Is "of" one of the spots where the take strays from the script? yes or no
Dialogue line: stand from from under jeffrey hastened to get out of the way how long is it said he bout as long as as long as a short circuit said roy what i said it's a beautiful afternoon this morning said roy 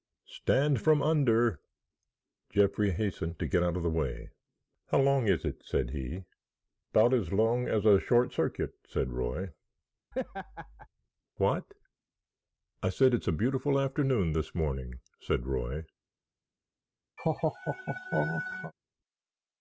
no